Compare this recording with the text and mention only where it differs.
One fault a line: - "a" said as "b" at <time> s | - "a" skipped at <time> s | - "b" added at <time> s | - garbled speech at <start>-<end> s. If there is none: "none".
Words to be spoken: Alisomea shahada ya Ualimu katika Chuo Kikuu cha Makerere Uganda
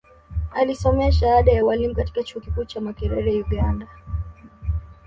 none